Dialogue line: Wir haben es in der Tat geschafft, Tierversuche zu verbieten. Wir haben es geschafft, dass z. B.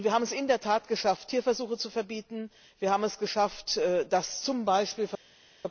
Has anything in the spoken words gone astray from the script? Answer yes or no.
no